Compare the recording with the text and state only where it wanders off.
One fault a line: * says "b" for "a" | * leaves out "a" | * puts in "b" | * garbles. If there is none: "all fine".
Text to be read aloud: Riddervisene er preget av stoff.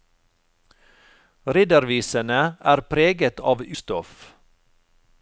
all fine